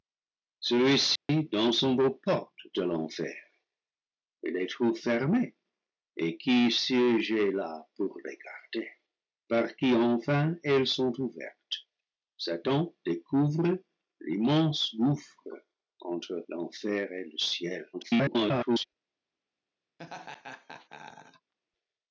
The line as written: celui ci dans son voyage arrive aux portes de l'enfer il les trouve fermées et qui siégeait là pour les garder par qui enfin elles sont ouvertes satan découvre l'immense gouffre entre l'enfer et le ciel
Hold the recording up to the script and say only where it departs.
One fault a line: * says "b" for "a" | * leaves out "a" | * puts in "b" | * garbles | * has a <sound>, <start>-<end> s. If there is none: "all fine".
* has a dropout, 1.2-1.3 s
* leaves out "voyage arrive"
* garbles
* has a laugh, 20.0-21.5 s